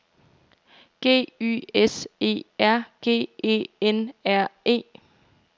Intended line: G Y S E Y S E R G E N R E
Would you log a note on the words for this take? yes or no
yes